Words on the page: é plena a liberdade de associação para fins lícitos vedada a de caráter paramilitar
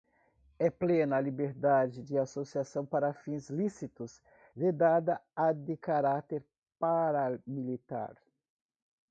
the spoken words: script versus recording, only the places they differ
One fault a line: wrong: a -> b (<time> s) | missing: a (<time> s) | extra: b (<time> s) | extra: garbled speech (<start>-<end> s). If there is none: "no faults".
no faults